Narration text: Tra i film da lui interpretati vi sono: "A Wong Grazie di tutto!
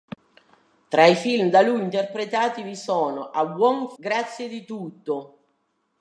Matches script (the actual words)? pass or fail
pass